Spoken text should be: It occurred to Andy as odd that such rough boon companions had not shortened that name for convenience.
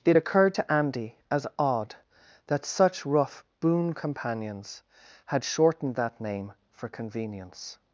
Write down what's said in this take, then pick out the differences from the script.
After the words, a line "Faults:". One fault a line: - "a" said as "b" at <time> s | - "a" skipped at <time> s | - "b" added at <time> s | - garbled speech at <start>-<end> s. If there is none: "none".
It occurred to Andy as odd that such rough boon companions had shortened that name for convenience.
Faults:
- "not" skipped at 5.4 s